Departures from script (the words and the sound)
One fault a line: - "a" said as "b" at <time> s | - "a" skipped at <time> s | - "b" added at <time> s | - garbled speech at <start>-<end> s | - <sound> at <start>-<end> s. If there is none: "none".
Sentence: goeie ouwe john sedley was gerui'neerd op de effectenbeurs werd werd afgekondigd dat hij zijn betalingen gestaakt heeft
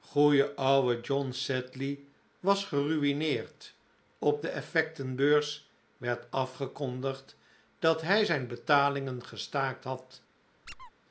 - "werd" skipped at 6.2 s
- "heeft" said as "had" at 9.8 s
- squeak at 10.7-10.9 s